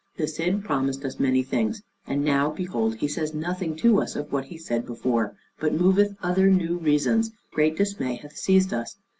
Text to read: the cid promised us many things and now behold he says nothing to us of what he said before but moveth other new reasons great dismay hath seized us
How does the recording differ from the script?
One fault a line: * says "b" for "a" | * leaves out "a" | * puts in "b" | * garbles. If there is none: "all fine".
all fine